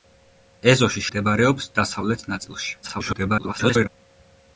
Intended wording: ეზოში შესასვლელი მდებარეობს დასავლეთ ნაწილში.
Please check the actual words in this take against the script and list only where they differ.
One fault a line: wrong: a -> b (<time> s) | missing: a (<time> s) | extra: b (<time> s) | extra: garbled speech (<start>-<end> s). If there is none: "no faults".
missing: შესასვლელი (1.0 s)
extra: garbled speech (2.8-3.9 s)